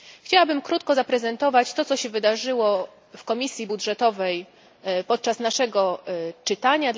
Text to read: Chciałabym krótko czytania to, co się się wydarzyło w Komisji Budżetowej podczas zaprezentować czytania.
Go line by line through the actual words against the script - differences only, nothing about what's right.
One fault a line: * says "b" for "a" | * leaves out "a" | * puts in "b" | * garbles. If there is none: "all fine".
* says "zaprezentować" for "czytania"
* leaves out "się"
* says "naszego" for "zaprezentować"